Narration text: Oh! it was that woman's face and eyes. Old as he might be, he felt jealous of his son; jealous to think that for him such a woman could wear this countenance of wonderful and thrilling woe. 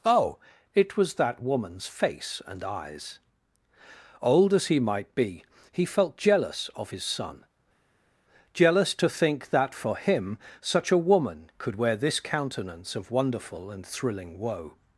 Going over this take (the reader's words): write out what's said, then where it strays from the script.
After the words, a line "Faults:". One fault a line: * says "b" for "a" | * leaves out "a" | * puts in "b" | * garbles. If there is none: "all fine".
Oh! it was that woman's face and eyes. Old as he might be, he felt jealous of his son; jealous to think that for him such a woman could wear this countenance of wonderful and thrilling woe.
Faults:
all fine